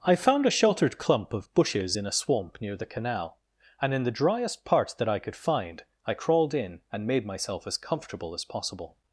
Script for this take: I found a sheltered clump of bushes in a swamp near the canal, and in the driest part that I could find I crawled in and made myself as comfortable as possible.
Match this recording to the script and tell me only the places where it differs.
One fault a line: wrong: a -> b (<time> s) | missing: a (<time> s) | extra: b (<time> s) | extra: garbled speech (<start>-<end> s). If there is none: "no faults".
no faults